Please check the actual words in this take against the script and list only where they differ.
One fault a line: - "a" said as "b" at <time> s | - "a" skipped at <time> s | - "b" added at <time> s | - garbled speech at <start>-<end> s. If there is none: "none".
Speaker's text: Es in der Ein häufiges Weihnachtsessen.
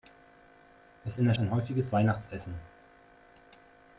none